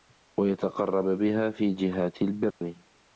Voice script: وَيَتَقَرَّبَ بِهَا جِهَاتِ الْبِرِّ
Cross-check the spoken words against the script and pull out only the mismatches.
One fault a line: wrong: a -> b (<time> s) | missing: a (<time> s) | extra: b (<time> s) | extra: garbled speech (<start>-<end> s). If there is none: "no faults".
extra: فِي (1.5 s)